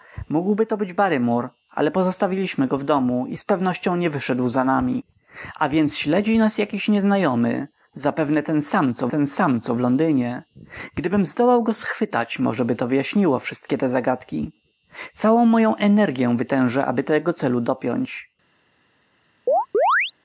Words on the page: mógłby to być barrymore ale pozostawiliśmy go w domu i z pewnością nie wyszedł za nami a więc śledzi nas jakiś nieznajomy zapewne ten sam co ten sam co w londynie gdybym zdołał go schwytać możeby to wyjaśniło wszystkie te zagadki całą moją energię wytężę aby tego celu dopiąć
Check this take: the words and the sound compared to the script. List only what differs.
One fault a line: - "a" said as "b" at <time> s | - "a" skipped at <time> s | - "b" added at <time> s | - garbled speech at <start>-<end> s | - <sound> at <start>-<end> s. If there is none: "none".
- chirp at 19.5-20.1 s